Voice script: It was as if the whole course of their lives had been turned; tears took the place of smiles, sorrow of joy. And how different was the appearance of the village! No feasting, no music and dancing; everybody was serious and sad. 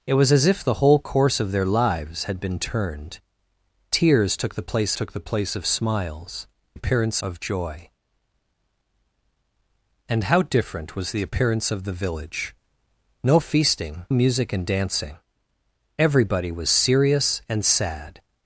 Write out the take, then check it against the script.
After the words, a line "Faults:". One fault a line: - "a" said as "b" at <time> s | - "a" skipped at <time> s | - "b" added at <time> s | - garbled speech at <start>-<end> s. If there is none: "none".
It was as if the whole course of their lives had been turned; tears took the place took the place of smiles, appearance of joy. And how different was the appearance of the village! No feasting, music and dancing; everybody was serious and sad.
Faults:
- "took the place" added at 4.9 s
- "sorrow" said as "appearance" at 6.7 s
- "no" skipped at 14.1 s